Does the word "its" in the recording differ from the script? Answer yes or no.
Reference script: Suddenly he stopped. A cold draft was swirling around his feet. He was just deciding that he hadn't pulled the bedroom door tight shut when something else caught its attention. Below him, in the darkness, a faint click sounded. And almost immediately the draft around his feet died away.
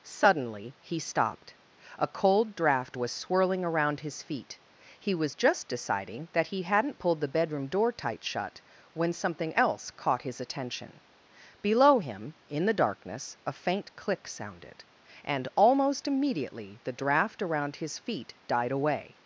yes